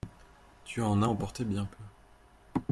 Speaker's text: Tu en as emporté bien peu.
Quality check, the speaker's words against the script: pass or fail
pass